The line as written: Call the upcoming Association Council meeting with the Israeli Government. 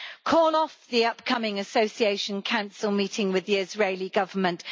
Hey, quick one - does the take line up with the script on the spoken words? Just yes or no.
no